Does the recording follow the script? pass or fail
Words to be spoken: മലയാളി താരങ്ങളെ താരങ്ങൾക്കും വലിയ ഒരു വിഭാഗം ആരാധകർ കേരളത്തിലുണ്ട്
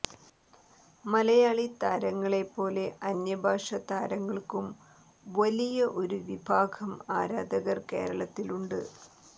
fail